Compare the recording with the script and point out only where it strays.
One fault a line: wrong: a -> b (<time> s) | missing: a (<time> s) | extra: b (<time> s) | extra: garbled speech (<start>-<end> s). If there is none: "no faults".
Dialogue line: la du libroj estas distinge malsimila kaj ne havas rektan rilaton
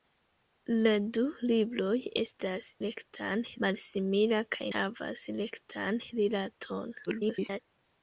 wrong: distinge -> rektan (2.9 s)
missing: ne (4.7 s)
extra: garbled speech (7.1-7.6 s)